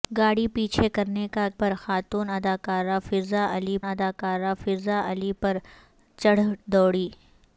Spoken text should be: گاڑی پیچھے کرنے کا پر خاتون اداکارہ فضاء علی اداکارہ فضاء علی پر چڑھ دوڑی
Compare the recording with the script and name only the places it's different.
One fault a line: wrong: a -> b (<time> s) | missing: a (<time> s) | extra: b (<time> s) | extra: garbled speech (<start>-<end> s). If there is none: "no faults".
no faults